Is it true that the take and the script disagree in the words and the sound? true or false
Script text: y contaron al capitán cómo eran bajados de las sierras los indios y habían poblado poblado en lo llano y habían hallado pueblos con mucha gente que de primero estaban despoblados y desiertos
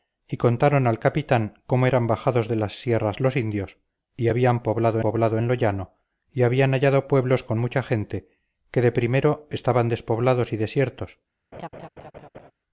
true